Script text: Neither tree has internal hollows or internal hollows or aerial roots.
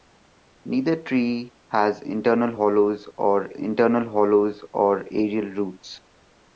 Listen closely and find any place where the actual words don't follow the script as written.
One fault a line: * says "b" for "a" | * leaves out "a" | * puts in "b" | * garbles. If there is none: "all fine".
all fine